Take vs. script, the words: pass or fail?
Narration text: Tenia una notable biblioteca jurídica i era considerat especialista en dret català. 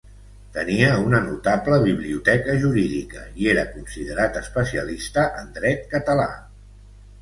pass